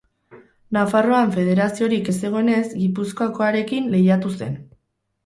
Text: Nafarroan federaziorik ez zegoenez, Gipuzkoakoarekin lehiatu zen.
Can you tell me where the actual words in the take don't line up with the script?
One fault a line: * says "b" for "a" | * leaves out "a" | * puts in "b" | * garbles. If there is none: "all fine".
all fine